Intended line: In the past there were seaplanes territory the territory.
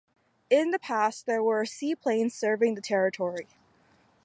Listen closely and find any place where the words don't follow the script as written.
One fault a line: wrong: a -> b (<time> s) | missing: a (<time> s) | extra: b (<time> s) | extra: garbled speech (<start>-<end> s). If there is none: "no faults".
wrong: territory -> serving (2.3 s)